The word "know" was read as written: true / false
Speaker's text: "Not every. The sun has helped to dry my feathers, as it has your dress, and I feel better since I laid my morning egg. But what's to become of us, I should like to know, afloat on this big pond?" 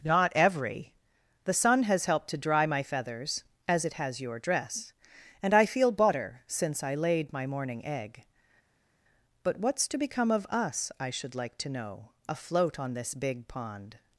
true